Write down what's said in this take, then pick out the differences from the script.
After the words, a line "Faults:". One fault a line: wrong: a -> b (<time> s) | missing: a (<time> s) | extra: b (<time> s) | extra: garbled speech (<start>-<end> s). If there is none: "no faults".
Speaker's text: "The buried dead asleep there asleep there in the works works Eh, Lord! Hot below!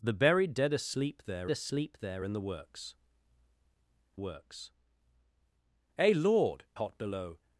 "The buried dead asleep there asleep there in the works works Eh, Lord! Hot below!
Faults:
no faults